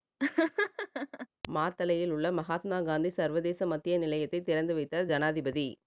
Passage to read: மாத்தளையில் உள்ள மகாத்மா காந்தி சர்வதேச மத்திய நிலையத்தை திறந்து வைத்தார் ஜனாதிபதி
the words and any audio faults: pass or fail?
fail